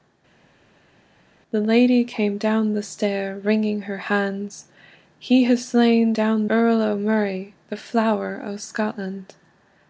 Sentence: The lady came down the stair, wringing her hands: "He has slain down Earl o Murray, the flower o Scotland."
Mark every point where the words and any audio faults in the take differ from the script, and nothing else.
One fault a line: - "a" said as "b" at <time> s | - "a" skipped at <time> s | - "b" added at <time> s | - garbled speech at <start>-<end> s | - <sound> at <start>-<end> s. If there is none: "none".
none